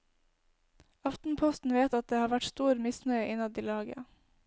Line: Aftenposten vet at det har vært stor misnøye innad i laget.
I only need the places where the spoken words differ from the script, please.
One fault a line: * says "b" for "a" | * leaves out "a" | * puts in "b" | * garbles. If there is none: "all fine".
all fine